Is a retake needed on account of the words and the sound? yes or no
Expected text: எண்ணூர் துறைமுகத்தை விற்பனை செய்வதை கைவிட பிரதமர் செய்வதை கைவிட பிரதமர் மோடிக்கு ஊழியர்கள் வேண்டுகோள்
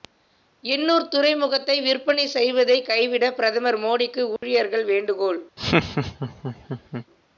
yes